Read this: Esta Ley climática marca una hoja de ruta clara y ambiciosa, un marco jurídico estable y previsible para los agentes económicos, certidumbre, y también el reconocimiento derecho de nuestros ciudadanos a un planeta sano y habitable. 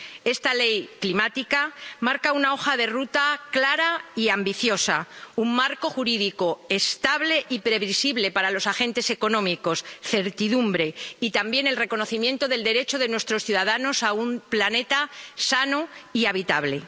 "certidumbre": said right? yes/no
yes